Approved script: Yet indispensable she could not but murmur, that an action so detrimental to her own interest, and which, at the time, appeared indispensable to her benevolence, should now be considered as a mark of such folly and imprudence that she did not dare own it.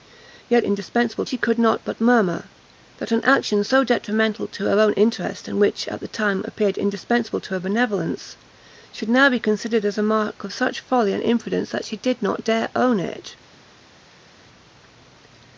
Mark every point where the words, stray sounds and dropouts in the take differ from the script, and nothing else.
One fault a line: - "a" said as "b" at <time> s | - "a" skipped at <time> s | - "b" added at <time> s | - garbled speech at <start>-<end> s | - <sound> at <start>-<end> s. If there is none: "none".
none